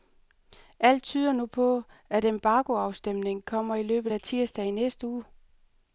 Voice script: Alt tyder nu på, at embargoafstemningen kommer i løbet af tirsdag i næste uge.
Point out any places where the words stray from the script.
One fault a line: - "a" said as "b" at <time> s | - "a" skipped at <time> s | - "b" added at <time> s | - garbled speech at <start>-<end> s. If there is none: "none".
none